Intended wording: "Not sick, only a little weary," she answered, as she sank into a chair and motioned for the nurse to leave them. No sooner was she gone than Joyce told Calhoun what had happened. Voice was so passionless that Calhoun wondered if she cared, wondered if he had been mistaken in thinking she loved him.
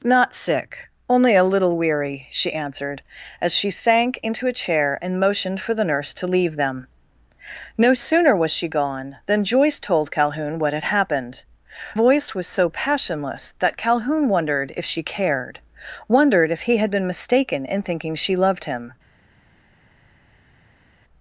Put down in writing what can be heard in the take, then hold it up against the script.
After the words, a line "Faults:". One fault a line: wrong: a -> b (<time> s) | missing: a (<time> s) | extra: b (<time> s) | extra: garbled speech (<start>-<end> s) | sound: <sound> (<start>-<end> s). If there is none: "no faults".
"Not sick, only a little weary," she answered, as she sank into a chair and motioned for the nurse to leave them. No sooner was she gone than Joyce told Calhoun what had happened. Voice was so passionless that Calhoun wondered if she cared, wondered if he had been mistaken in thinking she loved him.
Faults:
no faults